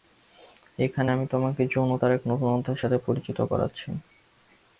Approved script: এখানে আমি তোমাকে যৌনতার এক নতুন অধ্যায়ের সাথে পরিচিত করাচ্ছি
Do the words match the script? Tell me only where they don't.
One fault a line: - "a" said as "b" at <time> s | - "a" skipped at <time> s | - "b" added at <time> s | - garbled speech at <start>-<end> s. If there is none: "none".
none